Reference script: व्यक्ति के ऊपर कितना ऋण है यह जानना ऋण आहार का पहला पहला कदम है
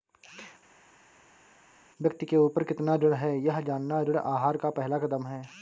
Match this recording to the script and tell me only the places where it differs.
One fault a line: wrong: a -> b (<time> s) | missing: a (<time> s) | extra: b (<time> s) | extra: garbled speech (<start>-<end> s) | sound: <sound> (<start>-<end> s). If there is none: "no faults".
missing: पहला (5.0 s)